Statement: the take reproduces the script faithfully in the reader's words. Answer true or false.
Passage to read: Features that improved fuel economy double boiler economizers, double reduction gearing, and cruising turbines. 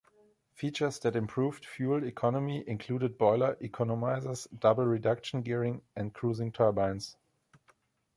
false